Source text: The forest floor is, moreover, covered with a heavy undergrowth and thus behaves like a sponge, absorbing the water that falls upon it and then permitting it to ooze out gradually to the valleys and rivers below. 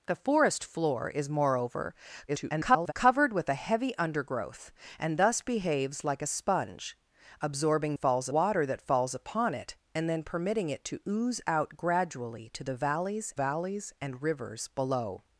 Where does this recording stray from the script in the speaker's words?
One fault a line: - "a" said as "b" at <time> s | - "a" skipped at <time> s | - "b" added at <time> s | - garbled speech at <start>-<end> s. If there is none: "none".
- garbled speech at 2.3-2.9 s
- "the" said as "falls" at 7.9 s
- "valleys" added at 13.3 s